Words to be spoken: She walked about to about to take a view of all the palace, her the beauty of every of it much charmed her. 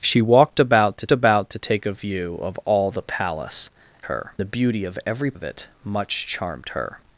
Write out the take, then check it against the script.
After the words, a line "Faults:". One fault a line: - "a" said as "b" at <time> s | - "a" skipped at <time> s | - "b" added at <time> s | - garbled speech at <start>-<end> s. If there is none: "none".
She walked about to about to take a view of all the palace, her the beauty of every of it much charmed her.
Faults:
none